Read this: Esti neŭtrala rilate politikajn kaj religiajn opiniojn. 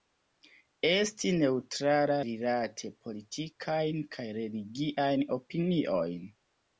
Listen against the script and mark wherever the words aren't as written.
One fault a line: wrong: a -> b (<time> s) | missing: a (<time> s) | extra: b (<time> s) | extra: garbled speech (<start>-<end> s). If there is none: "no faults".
no faults